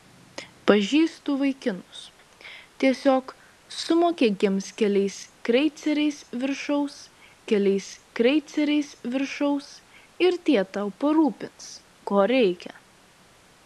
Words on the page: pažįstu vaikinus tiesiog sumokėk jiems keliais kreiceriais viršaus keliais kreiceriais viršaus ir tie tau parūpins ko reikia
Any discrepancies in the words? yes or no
no